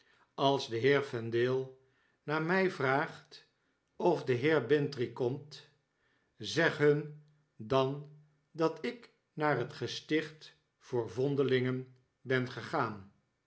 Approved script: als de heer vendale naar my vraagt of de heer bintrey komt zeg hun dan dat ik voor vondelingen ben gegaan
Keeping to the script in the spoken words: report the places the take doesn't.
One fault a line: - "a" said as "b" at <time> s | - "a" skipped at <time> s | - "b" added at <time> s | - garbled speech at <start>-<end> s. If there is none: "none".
- "naar het gesticht" added at 9.3 s